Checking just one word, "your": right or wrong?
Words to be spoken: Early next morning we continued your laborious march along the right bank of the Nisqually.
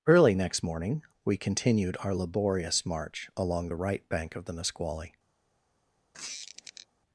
wrong